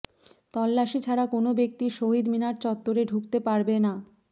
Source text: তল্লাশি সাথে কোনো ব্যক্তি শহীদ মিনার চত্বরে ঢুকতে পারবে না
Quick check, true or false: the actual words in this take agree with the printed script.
false